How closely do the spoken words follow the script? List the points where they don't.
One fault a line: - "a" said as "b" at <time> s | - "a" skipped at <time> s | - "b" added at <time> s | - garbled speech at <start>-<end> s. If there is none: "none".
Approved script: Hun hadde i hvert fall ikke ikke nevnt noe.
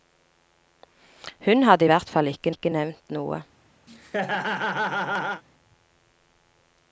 none